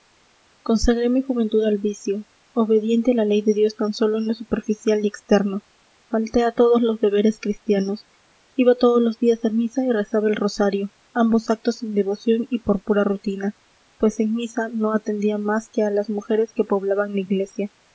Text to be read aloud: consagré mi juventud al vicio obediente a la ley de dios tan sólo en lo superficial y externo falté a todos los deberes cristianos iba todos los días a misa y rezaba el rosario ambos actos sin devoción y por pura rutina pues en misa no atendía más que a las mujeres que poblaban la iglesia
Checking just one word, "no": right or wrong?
right